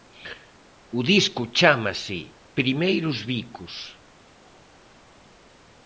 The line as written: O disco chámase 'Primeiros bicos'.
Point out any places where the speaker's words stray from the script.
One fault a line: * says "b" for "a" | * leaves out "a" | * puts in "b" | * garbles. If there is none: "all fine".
all fine